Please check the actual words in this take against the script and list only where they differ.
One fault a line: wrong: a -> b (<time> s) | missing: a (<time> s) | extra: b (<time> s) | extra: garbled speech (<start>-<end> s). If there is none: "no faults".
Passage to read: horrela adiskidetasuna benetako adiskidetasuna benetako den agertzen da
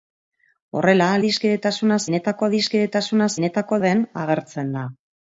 no faults